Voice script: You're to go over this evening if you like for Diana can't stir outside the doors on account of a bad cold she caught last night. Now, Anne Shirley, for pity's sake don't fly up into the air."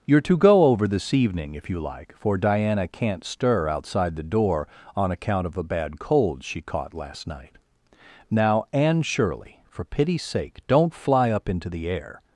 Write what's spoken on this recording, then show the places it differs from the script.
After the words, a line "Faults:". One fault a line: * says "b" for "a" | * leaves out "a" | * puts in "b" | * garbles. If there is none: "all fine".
You're to go over this evening if you like for Diana can't stir outside the door on account of a bad cold she caught last night. Now, Anne Shirley, for pity's sake don't fly up into the air."
Faults:
* says "door" for "doors"